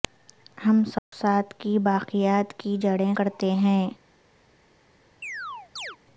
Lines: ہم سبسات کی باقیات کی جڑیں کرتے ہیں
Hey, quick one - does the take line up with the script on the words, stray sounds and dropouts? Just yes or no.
no